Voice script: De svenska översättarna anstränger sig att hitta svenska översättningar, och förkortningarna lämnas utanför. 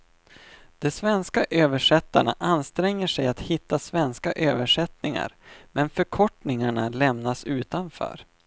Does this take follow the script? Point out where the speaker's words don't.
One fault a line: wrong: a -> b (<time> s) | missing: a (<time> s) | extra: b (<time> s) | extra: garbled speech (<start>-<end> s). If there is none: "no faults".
wrong: och -> men (5.7 s)